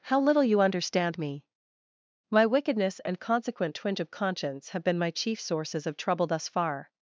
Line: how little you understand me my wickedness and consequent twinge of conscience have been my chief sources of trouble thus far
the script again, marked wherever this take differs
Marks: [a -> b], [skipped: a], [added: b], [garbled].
how little you understand me my wickedness and consequent twinge of conscience have been my chief sources of trouble thus far